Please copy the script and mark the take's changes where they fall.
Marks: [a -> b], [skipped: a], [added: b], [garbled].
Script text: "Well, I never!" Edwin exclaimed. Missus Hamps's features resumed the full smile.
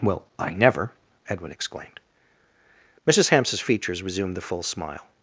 "Well, I never!" Edwin exclaimed. Missus Hamps's features resumed the full smile.